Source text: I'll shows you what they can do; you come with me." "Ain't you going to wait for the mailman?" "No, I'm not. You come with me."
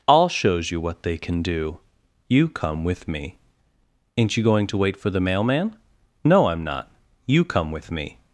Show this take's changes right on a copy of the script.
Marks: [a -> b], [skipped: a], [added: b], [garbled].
I'll shows you what they can do; you come with me." "Ain't you going to wait for the mailman?" "No, I'm not. You come with me."